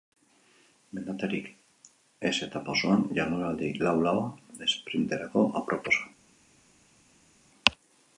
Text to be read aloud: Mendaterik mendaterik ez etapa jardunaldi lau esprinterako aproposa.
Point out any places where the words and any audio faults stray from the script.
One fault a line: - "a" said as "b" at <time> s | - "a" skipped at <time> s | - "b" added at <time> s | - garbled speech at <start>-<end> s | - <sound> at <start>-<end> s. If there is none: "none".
- "mendaterik" skipped at 1.5 s
- "osoan" added at 2.8 s
- "laua" added at 4.0 s